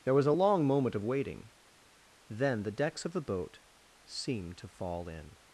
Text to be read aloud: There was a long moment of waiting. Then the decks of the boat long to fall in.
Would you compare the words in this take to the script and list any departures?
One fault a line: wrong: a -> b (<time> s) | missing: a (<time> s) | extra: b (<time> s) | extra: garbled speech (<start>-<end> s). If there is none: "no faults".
wrong: long -> seemed (4.0 s)